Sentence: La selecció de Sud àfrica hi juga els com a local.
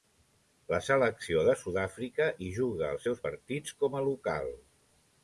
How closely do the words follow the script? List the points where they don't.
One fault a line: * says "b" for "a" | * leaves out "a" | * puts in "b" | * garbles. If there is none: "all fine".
* puts in "seus partits"